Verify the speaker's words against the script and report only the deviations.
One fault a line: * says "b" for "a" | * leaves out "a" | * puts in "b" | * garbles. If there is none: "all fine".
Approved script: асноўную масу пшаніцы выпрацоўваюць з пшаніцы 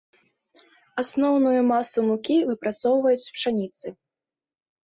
* says "мукі" for "пшаніцы"